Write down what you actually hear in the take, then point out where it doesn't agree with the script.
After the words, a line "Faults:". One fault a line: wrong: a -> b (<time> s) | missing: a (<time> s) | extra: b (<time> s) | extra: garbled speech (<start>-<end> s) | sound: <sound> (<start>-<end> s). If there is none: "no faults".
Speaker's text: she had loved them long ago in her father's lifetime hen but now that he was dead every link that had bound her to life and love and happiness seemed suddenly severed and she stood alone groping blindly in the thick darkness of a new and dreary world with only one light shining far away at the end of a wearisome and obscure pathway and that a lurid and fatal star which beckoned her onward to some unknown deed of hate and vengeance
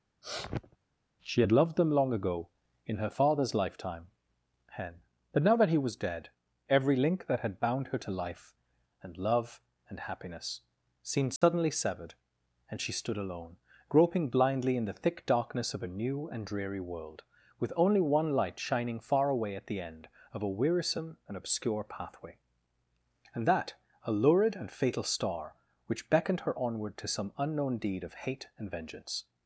she had loved them long ago in her father's lifetime hen but now that he was dead every link that had bound her to life and love and happiness seemed suddenly severed and she stood alone groping blindly in the thick darkness of a new and dreary world with only one light shining far away at the end of a wearisome and obscure pathway and that a lurid and fatal star which beckoned her onward to some unknown deed of hate and vengeance
Faults:
sound: sniff (0.2-0.8 s)
sound: dropout (11.4-11.4 s)